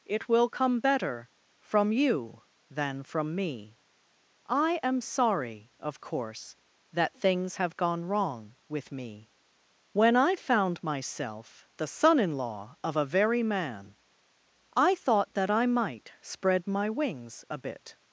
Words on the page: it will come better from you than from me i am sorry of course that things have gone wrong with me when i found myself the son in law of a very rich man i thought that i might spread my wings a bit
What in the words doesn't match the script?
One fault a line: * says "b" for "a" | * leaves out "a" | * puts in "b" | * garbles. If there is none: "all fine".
* leaves out "rich"